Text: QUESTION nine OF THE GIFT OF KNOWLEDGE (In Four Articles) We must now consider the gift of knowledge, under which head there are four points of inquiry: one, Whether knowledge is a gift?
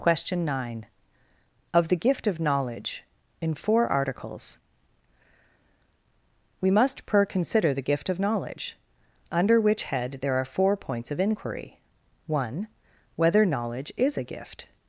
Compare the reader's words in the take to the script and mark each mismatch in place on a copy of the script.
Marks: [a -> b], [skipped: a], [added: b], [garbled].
QUESTION nine OF THE GIFT OF KNOWLEDGE (In Four Articles) We must [now -> per] consider the gift of knowledge, under which head there are four points of inquiry: one, Whether knowledge is a gift?